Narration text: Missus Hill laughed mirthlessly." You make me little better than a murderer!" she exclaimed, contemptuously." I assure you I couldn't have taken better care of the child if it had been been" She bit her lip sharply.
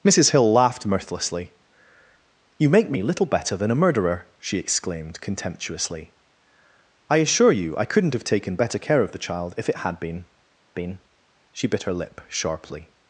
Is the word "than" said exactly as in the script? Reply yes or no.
yes